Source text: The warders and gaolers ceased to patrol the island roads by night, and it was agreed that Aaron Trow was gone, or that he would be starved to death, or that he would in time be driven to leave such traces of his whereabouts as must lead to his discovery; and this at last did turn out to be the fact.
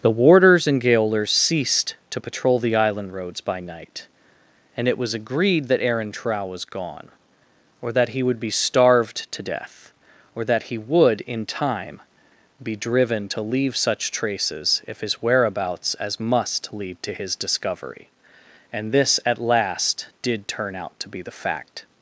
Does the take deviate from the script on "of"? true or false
true